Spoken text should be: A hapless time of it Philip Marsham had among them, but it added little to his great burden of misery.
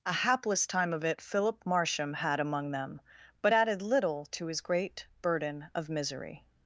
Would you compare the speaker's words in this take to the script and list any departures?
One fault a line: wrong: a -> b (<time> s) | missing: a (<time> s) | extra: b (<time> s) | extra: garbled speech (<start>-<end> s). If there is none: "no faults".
missing: it (3.5 s)